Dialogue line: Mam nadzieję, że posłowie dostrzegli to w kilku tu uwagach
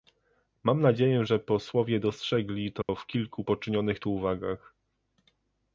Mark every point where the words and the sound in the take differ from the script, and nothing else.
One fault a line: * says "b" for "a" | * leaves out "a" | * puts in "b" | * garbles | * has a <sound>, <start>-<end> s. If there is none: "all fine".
* has a dropout, 2.8-2.9 s
* puts in "poczynionych"